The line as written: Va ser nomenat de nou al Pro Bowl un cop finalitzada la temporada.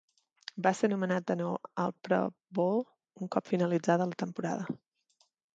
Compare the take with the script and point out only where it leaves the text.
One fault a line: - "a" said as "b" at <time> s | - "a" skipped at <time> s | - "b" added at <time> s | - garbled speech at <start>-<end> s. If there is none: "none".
none